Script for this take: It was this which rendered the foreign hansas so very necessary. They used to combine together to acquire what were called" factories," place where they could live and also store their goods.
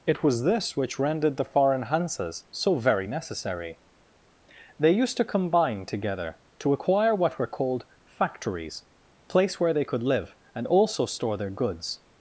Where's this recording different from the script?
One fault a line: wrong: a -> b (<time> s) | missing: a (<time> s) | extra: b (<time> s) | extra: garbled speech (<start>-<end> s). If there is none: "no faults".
no faults